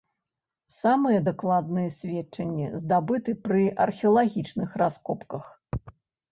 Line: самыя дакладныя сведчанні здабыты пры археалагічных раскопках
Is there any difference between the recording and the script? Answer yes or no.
no